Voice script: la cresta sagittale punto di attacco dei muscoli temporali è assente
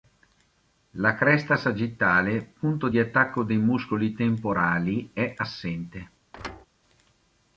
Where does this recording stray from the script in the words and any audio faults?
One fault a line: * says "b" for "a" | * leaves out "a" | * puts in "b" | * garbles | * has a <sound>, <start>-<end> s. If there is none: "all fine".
* has a thud, 6.3-6.7 s